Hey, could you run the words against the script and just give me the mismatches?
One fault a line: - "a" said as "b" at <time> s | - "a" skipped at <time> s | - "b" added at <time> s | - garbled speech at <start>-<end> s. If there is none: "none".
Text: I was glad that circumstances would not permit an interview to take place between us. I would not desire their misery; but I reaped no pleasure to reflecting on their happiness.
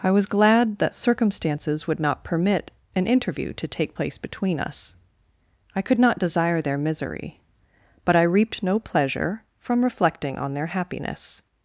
- "would" said as "could" at 5.8 s
- "to" said as "from" at 9.6 s